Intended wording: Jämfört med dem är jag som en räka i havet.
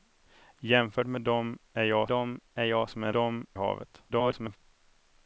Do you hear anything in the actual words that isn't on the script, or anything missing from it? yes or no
yes